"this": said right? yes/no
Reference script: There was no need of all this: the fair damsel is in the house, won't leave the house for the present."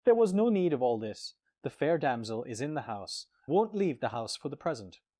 yes